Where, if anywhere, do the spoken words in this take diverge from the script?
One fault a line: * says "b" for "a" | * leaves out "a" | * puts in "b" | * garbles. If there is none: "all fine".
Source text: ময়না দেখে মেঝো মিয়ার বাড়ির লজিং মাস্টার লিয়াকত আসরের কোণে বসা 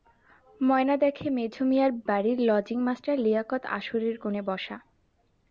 all fine